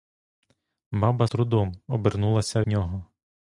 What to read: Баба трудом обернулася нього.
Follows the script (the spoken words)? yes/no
yes